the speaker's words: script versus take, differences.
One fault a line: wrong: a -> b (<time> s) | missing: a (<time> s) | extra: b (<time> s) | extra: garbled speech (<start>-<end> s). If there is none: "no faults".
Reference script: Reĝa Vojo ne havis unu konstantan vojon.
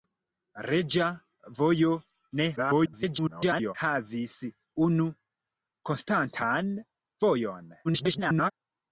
extra: garbled speech (2.6-3.7 s)
extra: garbled speech (7.8-8.5 s)